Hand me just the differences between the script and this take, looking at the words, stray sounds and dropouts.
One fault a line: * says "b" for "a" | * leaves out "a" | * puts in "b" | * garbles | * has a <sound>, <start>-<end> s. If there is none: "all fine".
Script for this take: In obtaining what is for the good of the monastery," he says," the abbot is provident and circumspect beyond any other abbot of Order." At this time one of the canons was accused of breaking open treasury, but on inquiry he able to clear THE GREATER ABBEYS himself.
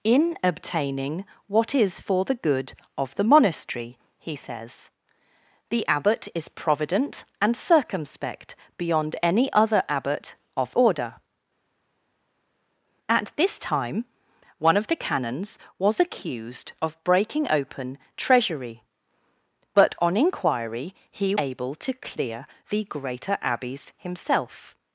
all fine